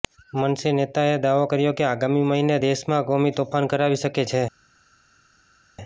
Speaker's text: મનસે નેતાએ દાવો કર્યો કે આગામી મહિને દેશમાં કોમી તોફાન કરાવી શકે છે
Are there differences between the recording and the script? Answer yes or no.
no